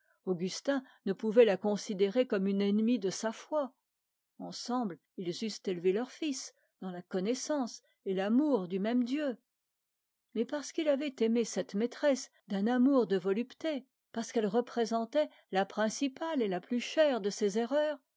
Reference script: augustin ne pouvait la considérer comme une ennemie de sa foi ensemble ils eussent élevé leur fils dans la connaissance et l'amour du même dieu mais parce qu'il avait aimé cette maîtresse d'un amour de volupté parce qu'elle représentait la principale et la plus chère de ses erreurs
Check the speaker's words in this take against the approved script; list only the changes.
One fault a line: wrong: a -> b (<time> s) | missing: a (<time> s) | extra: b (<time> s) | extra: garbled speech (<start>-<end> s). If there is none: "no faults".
no faults